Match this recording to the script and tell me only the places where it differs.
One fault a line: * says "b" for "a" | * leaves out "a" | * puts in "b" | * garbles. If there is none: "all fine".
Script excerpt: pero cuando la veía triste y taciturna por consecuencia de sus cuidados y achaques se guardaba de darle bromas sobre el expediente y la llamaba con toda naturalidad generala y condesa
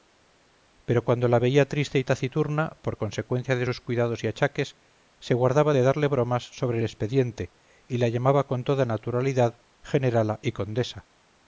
all fine